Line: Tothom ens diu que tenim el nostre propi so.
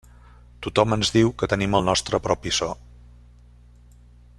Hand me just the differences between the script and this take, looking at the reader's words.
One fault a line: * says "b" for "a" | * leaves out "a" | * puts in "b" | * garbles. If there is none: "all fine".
all fine